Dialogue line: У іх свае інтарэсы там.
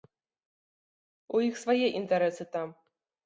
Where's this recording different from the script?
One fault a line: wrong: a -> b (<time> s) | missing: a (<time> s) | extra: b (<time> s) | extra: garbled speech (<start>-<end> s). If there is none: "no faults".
no faults